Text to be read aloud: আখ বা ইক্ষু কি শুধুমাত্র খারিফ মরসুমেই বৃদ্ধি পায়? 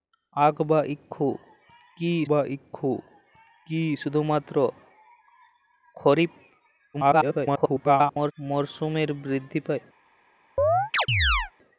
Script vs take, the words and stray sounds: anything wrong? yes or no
yes